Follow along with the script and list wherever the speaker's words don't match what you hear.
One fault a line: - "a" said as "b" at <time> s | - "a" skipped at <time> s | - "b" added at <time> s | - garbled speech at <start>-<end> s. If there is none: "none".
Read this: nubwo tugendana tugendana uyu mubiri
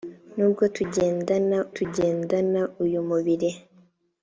none